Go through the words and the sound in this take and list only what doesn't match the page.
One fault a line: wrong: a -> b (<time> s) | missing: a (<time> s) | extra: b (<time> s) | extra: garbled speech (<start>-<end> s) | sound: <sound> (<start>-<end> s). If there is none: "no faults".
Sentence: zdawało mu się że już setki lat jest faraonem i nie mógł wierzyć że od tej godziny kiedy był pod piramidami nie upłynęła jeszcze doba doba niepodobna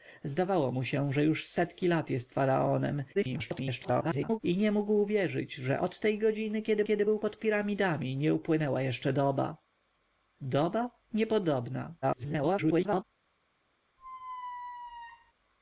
extra: garbled speech (3.1-4.4 s)
extra: kiedy (6.8 s)
extra: garbled speech (12.0-13.0 s)
sound: squeak (14.0-15.3 s)